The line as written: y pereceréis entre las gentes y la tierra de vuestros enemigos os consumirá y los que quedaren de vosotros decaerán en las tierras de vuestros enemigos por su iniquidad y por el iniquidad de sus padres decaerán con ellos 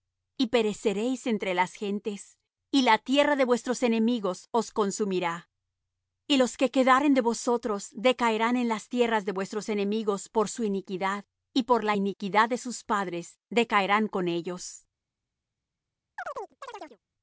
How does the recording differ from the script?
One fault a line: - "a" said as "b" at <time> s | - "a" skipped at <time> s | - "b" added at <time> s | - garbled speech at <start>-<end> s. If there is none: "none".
- "el" said as "la" at 11.8 s